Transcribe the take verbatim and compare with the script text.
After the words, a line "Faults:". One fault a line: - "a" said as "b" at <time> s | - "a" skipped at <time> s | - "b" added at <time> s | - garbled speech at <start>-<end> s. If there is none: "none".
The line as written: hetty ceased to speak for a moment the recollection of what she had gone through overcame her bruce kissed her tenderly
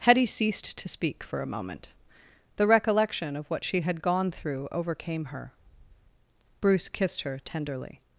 hetty ceased to speak for a moment the recollection of what she had gone through overcame her bruce kissed her tenderly
Faults:
none